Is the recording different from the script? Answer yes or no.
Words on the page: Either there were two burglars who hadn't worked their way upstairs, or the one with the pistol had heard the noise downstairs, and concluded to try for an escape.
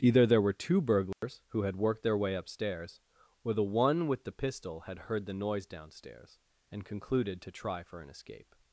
yes